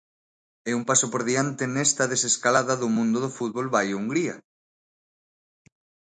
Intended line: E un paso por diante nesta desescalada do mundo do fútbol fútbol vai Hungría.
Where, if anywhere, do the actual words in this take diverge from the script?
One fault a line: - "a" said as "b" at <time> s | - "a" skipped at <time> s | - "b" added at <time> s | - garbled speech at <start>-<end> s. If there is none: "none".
- "fútbol" skipped at 3.7 s